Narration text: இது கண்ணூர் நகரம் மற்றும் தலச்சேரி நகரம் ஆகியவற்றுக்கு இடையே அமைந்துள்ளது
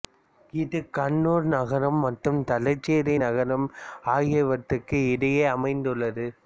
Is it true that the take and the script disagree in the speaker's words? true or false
false